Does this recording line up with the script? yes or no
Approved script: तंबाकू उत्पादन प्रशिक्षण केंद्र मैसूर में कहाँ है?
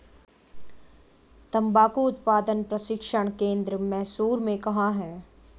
yes